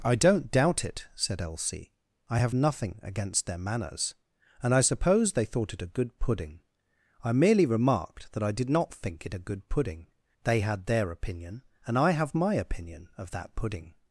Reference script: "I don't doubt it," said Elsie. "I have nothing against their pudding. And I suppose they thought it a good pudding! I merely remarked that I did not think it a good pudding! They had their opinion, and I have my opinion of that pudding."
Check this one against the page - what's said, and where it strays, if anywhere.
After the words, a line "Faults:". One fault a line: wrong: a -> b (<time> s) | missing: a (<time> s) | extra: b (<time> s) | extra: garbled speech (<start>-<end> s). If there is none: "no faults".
"I don't doubt it," said Elsie. "I have nothing against their manners. And I suppose they thought it a good pudding! I merely remarked that I did not think it a good pudding! They had their opinion, and I have my opinion of that pudding."
Faults:
wrong: pudding -> manners (3.6 s)